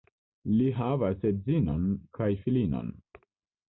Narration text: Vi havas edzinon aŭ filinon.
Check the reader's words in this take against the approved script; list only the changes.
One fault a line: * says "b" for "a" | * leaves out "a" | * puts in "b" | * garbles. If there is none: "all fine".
* says "Li" for "Vi"
* says "kaj" for "aŭ"